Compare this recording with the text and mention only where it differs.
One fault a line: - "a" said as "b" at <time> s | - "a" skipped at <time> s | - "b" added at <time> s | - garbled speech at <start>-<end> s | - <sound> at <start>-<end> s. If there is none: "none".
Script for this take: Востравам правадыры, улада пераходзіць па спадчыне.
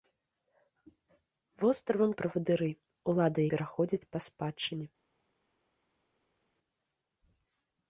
none